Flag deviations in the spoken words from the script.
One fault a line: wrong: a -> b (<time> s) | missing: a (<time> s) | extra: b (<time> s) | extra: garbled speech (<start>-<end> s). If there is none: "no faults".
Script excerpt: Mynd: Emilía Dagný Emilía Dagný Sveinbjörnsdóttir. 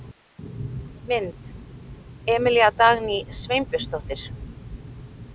missing: Emilía Dagný (3.3 s)